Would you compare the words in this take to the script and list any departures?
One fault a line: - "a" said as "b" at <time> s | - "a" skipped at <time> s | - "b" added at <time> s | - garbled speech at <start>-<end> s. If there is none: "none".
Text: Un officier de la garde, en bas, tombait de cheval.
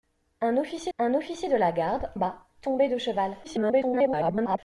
- "un officier" added at 1.0 s
- "en" skipped at 2.1 s
- garbled speech at 3.4-4.6 s